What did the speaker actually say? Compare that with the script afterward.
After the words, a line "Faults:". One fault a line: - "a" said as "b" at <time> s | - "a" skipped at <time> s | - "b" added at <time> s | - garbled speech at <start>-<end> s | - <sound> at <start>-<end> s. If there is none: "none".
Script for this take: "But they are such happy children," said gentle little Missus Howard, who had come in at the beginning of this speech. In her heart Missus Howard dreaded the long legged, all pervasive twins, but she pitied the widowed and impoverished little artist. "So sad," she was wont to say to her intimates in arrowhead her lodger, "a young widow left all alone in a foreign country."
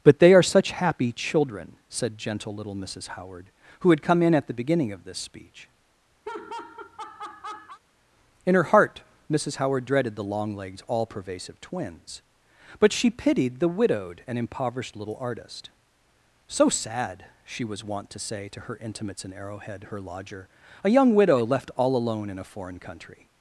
"But they are such happy children," said gentle little Missus Howard, who had come in at the beginning of this speech. In her heart Missus Howard dreaded the long legged, all pervasive twins, but she pitied the widowed and impoverished little artist. "So sad," she was wont to say to her intimates in arrowhead her lodger, "a young widow left all alone in a foreign country."
Faults:
- laugh at 6.2-7.8 s